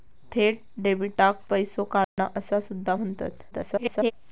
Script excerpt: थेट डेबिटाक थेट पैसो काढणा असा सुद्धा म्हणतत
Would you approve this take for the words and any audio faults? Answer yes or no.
no